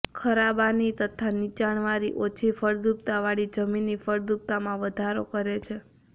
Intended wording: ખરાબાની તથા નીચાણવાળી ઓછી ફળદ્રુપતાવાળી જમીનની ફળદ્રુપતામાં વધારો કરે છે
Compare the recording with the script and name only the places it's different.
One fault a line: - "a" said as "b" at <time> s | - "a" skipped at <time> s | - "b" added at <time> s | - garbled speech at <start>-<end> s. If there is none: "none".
none